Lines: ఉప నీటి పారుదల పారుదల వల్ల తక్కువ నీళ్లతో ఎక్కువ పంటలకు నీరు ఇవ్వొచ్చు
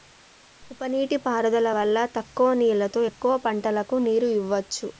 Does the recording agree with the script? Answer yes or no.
no